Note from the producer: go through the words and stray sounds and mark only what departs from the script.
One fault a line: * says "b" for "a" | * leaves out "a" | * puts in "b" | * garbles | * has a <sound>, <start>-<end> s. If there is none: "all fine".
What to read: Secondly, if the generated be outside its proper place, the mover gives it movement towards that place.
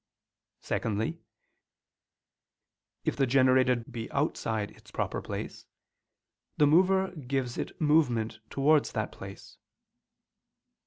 all fine